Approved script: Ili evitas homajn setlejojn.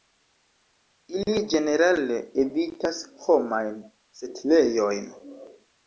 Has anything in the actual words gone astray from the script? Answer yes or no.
yes